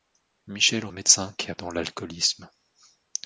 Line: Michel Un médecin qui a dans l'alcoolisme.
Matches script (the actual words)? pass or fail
pass